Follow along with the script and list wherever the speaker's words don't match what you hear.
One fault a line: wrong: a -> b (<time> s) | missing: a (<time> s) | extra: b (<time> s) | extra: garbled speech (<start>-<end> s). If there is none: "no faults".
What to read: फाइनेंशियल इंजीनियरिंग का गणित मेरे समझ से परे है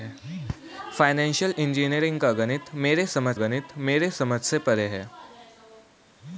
extra: गणित मेरे समझ (3.3 s)